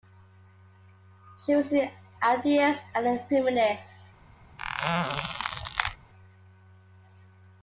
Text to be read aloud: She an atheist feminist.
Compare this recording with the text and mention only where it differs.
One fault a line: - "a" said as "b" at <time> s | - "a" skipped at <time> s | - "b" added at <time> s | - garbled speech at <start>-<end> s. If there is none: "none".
- "was" added at 1.6 s
- "and a" added at 2.9 s